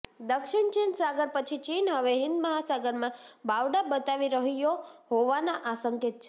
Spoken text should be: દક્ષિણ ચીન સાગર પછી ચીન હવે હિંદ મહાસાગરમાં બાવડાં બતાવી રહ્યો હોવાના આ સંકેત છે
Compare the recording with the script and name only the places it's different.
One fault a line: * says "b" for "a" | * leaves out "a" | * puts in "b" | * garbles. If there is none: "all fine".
all fine